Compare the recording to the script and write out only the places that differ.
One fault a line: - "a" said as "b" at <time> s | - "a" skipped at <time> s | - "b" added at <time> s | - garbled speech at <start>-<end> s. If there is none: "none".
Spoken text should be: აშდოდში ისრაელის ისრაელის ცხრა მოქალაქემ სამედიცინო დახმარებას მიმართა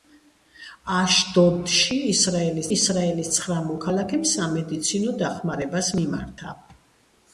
none